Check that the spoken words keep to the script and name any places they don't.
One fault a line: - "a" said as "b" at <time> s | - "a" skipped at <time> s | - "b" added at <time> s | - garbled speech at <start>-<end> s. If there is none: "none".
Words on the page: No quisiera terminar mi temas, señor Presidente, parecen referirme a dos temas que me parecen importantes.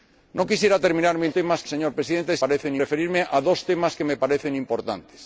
none